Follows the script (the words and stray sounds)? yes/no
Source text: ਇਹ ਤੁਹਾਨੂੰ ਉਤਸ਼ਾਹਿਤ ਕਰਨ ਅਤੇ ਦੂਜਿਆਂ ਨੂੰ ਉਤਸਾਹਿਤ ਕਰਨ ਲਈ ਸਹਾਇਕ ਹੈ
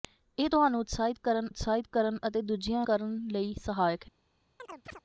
no